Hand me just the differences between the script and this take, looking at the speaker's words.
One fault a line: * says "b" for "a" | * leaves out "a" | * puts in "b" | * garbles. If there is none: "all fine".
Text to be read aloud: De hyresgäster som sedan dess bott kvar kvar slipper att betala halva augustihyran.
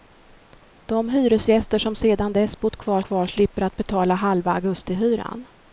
all fine